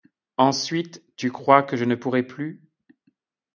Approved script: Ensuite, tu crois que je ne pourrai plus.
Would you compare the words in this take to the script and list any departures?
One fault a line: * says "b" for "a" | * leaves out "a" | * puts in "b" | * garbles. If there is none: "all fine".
all fine